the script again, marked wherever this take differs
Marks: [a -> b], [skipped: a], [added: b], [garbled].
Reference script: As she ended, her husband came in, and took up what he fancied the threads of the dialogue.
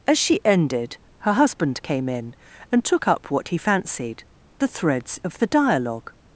As she ended, her husband came in, and took up what he fancied the threads of the dialogue.